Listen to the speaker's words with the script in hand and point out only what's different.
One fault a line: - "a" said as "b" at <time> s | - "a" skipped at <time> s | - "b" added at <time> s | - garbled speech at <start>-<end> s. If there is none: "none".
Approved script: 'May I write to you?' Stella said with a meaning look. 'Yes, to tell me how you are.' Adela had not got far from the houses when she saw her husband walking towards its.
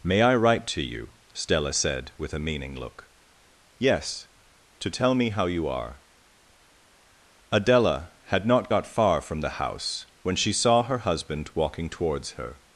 - "houses" said as "house" at 9.6 s
- "its" said as "her" at 12.3 s